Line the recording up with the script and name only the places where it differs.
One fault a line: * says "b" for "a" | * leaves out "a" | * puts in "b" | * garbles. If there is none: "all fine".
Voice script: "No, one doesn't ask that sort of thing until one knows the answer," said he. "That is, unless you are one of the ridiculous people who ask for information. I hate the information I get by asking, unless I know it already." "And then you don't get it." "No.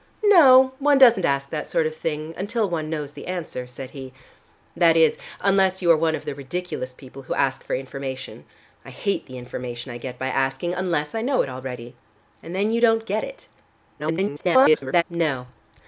* garbles